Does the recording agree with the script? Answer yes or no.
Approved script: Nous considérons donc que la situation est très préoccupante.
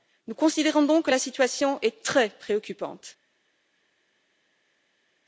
yes